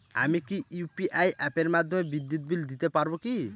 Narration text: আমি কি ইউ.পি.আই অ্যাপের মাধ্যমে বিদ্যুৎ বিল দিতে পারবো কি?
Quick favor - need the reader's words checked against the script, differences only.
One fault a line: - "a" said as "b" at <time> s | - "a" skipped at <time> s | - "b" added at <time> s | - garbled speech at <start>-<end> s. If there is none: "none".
none